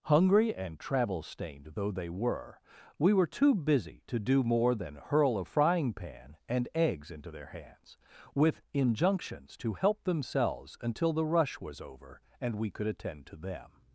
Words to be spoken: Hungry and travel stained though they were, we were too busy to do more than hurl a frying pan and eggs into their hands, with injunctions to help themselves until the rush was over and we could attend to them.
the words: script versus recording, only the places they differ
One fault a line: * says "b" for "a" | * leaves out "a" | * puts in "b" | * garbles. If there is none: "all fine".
all fine